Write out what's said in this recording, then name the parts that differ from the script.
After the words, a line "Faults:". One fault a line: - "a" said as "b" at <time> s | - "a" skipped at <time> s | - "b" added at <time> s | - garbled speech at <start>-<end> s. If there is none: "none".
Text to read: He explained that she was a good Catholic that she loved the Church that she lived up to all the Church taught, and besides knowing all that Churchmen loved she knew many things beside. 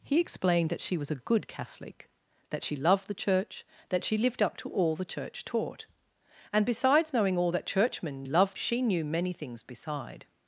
He explained that she was a good Catholic that she loved the Church that she lived up to all the Church taught, and besides knowing all that Churchmen loved she knew many things beside.
Faults:
none